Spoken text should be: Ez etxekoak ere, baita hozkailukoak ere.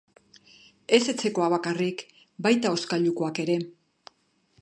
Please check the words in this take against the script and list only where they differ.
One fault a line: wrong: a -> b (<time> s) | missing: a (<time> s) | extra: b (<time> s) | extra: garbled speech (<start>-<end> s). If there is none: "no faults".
wrong: ere -> bakarrik (1.6 s)